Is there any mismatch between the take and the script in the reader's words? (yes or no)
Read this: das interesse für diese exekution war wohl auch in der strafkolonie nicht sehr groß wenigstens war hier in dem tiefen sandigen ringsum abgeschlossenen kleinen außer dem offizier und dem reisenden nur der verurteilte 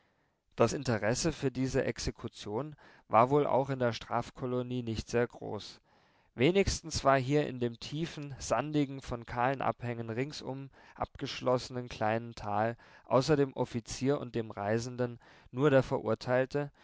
yes